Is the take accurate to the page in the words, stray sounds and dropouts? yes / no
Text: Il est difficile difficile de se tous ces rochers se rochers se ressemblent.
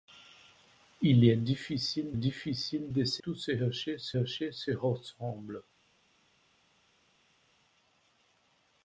yes